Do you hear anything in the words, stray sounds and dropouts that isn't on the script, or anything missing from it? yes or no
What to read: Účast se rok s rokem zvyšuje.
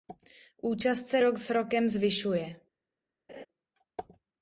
yes